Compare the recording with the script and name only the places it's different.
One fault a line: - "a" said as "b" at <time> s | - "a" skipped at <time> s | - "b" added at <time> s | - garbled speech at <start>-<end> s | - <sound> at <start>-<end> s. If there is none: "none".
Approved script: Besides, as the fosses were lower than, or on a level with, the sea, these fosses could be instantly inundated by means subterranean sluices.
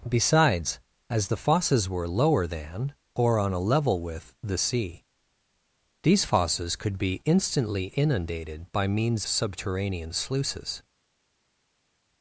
none